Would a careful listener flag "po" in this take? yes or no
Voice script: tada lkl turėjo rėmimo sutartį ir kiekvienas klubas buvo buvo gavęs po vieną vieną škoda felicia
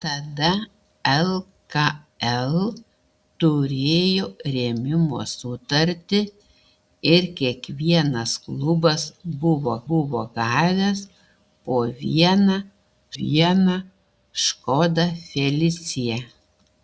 no